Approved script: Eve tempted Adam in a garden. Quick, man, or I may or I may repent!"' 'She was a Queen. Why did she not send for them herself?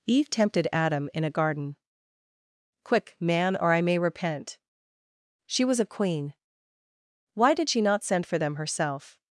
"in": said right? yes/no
yes